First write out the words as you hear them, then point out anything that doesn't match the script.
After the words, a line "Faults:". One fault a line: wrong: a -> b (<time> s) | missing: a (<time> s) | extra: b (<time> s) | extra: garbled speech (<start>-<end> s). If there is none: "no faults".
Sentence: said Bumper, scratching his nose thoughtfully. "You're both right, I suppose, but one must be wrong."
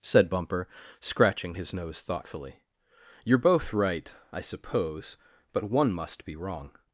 said Bumper, scratching his nose thoughtfully. "You're both right, I suppose, but one must be wrong."
Faults:
no faults